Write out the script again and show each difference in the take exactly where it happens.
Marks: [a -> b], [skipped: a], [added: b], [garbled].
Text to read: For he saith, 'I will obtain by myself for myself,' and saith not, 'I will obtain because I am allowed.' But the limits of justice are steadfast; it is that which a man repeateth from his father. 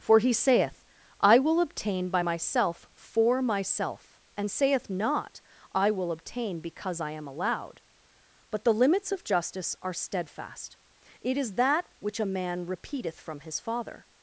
For he saith, 'I will obtain by myself for myself,' and saith not, 'I will obtain because I am allowed.' But the limits of justice are steadfast; it is that which a man repeateth from his father.